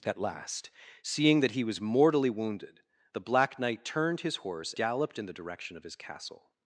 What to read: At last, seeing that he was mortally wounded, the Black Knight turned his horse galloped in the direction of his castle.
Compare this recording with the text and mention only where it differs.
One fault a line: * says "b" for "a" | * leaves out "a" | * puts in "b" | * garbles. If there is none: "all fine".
all fine